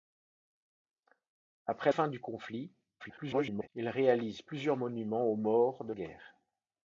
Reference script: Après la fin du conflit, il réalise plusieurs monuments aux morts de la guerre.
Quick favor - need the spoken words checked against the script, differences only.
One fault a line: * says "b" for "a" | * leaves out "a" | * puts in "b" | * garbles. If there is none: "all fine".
* leaves out "la"
* garbles
* leaves out "la"